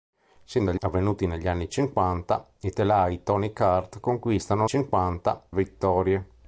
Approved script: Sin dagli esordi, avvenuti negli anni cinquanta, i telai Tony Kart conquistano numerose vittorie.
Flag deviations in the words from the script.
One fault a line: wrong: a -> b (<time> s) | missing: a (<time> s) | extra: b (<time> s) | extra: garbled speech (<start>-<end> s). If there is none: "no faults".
missing: esordi (0.8 s)
wrong: numerose -> cinquanta (4.6 s)